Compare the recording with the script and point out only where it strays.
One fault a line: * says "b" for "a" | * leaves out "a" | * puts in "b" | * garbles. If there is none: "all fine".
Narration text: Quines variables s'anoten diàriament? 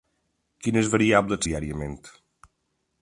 * leaves out "s'anoten"